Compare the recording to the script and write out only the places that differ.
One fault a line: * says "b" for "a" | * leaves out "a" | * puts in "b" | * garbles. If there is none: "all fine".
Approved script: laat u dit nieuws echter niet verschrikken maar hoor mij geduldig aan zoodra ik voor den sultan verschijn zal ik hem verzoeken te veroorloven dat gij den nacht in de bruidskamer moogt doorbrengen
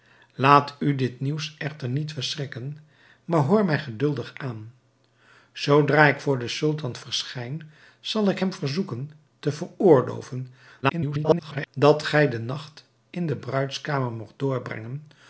* garbles